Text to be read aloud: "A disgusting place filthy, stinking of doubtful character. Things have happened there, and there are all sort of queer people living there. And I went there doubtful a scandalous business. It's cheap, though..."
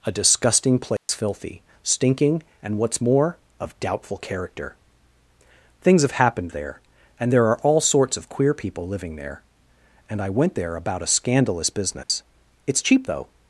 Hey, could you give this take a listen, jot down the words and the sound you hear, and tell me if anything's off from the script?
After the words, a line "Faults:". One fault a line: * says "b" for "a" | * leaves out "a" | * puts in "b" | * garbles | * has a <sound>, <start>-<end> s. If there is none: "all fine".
"A disgusting place filthy, stinking and, what's more, of doubtful character. Things have happened there, and there are all sorts of queer people living there. And I went there about a scandalous business. It's cheap, though..."
Faults:
* has a dropout, 1.0-1.1 s
* puts in "and what's more"
* says "sorts" for "sort"
* says "about" for "doubtful"
* has a dropout, 12.0-12.1 s